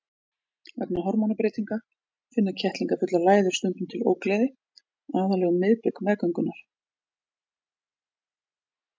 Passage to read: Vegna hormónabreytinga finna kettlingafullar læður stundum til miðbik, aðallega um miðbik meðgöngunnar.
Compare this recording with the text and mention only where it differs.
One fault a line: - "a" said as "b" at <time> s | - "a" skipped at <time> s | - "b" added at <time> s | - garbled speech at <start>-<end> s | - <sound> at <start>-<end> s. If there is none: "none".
- "miðbik" said as "ógleði" at 4.1 s